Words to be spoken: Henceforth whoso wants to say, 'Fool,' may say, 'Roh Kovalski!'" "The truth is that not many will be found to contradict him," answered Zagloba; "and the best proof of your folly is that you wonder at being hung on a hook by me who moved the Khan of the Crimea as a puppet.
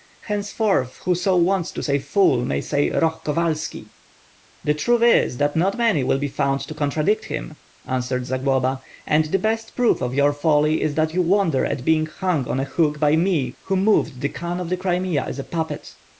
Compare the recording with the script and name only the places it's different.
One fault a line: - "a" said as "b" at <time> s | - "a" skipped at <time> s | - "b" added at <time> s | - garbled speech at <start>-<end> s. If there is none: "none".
none